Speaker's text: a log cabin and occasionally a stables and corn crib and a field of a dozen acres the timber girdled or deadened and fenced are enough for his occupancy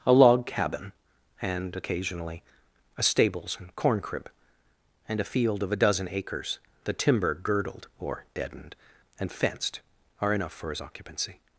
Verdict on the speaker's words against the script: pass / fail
pass